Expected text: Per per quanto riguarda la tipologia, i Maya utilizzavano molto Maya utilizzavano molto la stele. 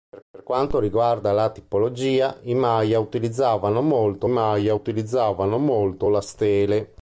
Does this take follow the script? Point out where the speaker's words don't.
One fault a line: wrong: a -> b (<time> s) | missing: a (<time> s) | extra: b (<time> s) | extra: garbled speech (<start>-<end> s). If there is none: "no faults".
no faults